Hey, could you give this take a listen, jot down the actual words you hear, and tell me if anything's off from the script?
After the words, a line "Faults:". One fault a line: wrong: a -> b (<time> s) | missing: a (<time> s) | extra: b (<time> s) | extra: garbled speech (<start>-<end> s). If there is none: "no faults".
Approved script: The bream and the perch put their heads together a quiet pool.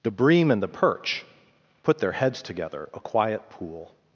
The bream and the perch put their heads together a quiet pool.
Faults:
no faults